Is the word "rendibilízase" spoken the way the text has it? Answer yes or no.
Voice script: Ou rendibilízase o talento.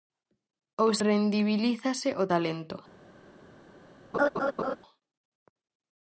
yes